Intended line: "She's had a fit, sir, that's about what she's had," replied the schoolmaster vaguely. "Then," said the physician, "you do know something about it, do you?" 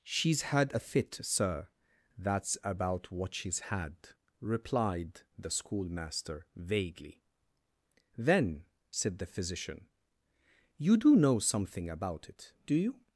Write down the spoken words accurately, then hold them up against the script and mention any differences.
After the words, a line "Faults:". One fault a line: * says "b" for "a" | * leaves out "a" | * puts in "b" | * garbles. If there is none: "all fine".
"She's had a fit, sir, that's about what she's had," replied the schoolmaster vaguely. "Then," said the physician, "you do know something about it, do you?"
Faults:
all fine